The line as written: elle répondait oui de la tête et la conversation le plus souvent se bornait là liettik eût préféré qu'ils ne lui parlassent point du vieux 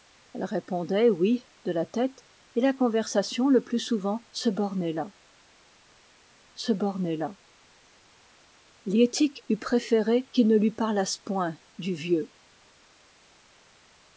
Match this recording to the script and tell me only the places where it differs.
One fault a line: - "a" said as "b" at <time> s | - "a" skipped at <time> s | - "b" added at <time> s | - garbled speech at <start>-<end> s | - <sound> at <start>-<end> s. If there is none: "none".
- "se bornait là" added at 6.5 s